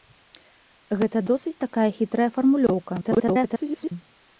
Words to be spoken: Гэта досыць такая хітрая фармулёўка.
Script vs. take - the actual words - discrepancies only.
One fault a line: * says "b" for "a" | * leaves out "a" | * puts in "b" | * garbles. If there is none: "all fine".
* garbles